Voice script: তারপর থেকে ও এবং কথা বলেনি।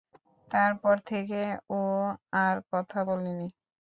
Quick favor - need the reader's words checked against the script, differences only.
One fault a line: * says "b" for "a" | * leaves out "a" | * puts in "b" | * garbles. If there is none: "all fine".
* says "আর" for "এবং"